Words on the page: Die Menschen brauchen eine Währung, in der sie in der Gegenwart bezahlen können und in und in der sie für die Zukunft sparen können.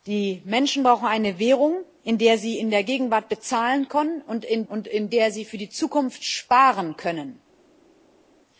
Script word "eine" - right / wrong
right